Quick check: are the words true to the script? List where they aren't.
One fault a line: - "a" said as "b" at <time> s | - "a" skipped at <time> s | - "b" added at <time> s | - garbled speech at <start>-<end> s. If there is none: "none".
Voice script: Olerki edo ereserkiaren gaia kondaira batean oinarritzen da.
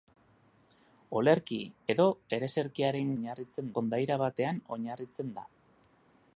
- "gaia" said as "oinarritzen" at 3.2 s